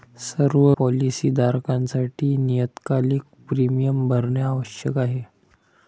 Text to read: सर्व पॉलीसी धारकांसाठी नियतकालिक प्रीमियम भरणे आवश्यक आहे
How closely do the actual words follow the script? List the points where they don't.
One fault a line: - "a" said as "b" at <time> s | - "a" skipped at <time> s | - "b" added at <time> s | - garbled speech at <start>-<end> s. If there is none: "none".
none